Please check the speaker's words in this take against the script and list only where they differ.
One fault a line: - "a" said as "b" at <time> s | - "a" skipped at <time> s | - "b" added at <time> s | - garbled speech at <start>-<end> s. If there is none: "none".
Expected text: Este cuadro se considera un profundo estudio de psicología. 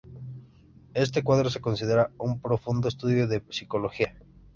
none